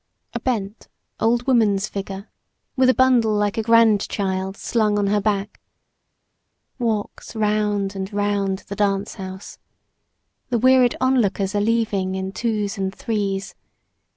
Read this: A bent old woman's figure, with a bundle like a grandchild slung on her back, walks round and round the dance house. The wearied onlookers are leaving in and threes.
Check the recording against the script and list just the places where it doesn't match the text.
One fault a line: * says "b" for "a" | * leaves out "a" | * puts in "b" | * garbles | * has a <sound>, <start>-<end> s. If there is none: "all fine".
* puts in "twos"